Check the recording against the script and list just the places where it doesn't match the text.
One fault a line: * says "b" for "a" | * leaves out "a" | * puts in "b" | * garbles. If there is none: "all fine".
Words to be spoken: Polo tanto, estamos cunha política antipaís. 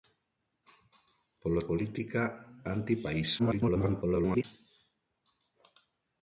* leaves out "tanto estamos cunha"
* garbles